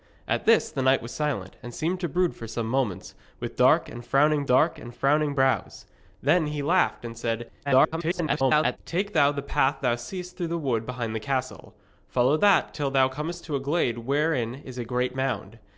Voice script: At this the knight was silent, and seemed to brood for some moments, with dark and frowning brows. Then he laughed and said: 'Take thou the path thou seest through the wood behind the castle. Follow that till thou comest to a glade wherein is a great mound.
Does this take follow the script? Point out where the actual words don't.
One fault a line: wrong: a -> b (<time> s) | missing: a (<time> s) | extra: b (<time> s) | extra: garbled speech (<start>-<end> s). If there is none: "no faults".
extra: dark and frowning (4.5 s)
extra: garbled speech (7.6-8.8 s)